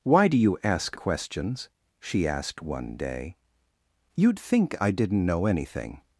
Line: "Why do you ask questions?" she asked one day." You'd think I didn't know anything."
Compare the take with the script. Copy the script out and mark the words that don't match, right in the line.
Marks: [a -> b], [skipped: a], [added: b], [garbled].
"Why do you ask questions?" she asked one day." You'd think I didn't know anything."